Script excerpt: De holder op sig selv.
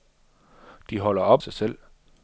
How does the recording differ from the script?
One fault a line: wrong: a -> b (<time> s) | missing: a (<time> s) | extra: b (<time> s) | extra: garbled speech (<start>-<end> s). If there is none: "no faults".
no faults